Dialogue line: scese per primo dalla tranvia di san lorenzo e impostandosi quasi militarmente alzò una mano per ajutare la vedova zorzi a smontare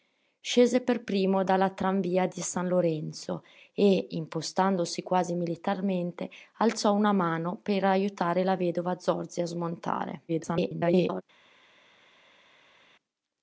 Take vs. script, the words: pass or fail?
fail